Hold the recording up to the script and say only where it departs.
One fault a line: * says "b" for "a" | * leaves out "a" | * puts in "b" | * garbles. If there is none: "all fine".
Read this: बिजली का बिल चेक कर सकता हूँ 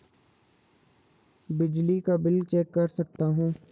all fine